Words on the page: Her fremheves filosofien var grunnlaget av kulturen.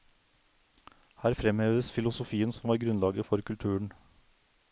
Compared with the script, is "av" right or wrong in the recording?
wrong